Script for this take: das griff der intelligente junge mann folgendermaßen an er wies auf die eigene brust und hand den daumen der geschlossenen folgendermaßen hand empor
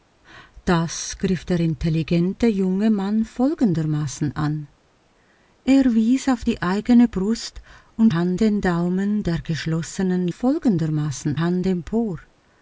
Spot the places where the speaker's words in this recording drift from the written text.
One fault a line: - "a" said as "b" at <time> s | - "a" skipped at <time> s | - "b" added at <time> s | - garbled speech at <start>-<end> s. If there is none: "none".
none